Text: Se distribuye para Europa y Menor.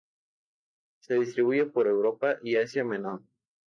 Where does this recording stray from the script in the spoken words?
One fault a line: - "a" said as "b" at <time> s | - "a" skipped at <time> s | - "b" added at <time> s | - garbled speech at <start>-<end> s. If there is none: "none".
- "para" said as "por" at 1.7 s
- "Asia" added at 2.5 s